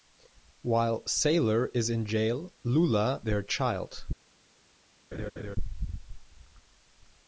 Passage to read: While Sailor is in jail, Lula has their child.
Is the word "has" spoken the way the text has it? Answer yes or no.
no